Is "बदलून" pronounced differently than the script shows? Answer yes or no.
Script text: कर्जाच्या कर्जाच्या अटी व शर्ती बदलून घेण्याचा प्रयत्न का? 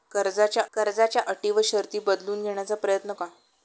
no